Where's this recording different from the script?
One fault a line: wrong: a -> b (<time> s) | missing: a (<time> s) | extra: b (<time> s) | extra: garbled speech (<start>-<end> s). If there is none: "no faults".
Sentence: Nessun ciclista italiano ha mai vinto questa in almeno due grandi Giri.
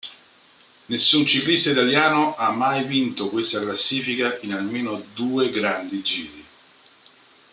extra: classifica (3.6 s)